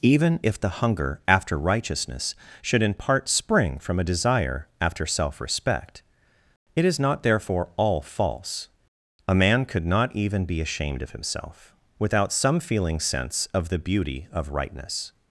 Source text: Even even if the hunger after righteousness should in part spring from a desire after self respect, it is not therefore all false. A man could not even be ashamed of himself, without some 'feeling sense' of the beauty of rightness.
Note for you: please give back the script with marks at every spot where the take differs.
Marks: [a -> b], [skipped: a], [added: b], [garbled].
Even [skipped: even] if the hunger after righteousness should in part spring from a desire after self respect, it is not therefore all false. A man could not even be ashamed of himself, without some 'feeling sense' of the beauty of rightness.